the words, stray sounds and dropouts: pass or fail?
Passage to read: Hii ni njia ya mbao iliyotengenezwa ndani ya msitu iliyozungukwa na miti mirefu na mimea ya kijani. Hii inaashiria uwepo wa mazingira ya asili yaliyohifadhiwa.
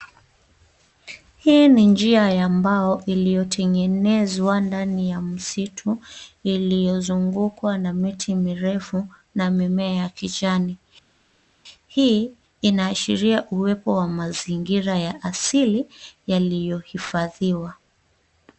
pass